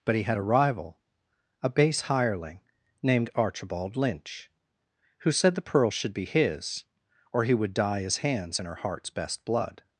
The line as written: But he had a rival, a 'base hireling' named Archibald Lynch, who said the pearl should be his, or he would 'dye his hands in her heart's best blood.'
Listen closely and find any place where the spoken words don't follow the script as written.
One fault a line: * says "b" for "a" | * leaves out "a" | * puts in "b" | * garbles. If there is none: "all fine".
all fine